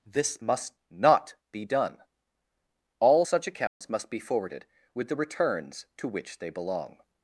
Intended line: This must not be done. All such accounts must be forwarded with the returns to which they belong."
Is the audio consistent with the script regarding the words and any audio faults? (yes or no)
no